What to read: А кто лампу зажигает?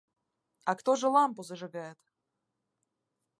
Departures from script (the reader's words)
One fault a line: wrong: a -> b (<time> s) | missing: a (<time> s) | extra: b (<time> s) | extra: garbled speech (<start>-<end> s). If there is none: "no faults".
extra: же (1.0 s)